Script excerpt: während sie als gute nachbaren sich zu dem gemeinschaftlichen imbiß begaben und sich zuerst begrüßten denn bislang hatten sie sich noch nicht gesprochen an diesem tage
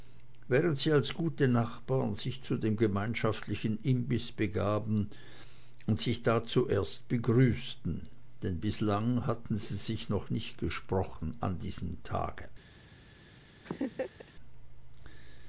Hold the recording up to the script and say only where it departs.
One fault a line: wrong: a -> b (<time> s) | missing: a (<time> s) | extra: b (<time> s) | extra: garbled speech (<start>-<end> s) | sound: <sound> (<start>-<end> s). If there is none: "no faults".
extra: da (6.2 s)
sound: laugh (13.6-14.3 s)